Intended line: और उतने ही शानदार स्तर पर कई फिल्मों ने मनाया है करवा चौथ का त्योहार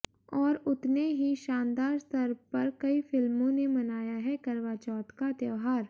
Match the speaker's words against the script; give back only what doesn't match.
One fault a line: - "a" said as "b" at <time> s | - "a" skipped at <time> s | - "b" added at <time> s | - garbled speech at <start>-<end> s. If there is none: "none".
none